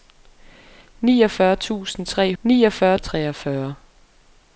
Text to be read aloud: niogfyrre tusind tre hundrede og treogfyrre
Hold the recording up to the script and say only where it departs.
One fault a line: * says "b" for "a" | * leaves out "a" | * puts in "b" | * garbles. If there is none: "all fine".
* says "niogfyrre" for "hundrede"